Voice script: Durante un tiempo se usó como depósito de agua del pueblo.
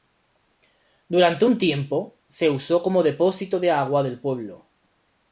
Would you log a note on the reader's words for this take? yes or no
no